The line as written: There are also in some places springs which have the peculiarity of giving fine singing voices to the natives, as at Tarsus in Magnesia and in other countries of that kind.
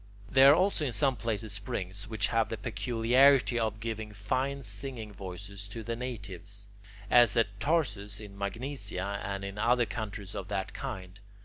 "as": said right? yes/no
yes